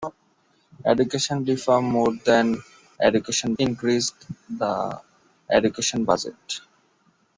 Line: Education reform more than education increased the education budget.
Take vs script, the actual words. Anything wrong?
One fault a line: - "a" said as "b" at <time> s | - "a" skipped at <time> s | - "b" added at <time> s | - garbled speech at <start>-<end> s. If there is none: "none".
none